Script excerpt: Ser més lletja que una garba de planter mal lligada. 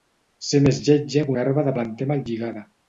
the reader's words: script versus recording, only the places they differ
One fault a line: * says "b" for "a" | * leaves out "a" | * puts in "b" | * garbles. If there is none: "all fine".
* leaves out "una"